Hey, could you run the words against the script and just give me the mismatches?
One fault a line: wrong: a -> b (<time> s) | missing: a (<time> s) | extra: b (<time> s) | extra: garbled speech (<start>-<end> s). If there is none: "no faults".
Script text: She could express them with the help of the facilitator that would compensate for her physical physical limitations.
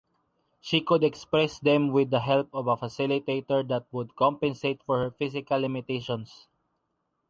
wrong: the -> a (2.6 s)
missing: physical (5.6 s)